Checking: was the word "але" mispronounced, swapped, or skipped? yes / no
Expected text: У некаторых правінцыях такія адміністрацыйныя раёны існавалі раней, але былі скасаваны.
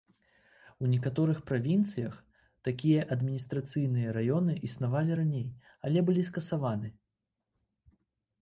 no